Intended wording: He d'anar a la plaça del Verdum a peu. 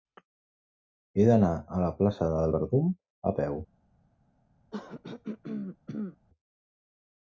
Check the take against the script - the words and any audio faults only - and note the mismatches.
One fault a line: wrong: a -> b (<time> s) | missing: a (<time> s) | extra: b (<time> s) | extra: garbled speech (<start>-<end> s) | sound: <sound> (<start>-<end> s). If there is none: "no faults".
sound: throat clearing (4.7-6.2 s)